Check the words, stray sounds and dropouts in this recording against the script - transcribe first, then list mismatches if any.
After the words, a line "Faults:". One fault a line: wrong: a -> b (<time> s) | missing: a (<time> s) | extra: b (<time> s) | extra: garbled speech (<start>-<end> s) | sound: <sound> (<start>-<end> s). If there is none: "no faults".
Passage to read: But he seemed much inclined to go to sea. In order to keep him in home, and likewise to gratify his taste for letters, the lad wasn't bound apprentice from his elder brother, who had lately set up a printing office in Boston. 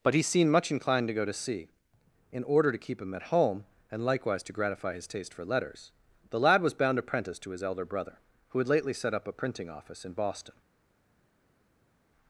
But he seemed much inclined to go to sea. In order to keep him at home, and likewise to gratify his taste for letters, the lad was bound apprentice to his elder brother, who had lately set up a printing office in Boston.
Faults:
wrong: in -> at (3.1 s)
wrong: wasn't -> was (6.6 s)
wrong: from -> to (7.4 s)